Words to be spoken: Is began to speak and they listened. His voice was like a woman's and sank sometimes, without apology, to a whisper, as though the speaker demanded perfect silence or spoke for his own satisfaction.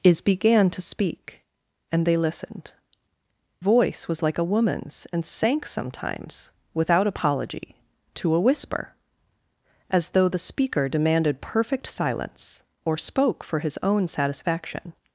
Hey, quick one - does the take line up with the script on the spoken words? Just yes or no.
no